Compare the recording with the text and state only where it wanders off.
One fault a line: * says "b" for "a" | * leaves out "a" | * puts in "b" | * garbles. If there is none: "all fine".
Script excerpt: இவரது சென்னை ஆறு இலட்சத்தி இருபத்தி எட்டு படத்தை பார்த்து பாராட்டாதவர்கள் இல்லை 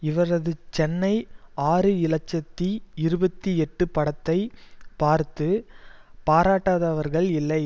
all fine